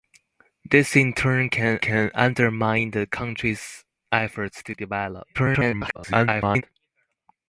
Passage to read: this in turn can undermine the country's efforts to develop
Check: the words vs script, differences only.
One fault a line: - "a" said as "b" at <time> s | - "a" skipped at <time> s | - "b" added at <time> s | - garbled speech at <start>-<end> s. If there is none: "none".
- "can" added at 1.8 s
- garbled speech at 5.3-6.6 s